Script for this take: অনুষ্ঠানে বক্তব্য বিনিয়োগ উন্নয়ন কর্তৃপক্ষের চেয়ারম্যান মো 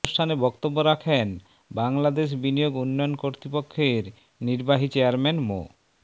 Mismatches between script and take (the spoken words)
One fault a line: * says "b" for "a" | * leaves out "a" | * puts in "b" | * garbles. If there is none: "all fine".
* puts in "রাখেন বাংলাদেশ"
* puts in "নির্বাহী"